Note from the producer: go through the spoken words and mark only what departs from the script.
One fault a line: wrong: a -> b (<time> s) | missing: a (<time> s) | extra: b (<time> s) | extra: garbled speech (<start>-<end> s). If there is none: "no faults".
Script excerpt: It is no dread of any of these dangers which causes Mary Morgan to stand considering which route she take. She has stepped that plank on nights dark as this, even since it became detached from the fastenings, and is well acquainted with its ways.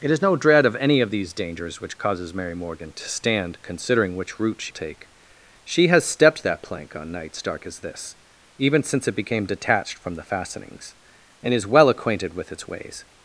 no faults